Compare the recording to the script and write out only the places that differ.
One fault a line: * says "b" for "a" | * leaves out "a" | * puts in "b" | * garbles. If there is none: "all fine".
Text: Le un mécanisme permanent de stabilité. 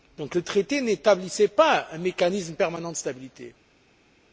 * puts in "traité n'établissait pas"